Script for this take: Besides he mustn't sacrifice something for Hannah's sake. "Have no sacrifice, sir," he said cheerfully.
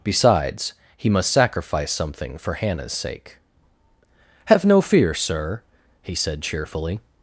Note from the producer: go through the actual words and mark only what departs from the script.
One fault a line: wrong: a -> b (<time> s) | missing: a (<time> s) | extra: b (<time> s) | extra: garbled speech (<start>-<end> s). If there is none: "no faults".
wrong: mustn't -> must (1.1 s)
wrong: sacrifice -> fear (4.8 s)